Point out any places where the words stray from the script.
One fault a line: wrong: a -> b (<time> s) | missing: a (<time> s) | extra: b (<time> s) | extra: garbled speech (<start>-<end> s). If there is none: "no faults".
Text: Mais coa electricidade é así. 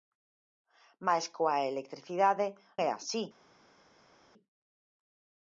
no faults